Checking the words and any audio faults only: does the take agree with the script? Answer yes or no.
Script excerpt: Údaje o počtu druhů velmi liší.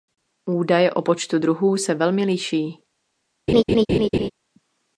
no